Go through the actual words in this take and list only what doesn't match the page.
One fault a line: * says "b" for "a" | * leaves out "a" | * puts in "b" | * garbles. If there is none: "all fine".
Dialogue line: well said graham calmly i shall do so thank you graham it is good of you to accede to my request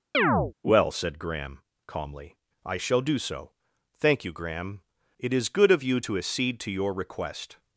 * says "your" for "my"